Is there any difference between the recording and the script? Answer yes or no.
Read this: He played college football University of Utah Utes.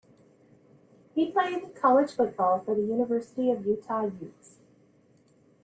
yes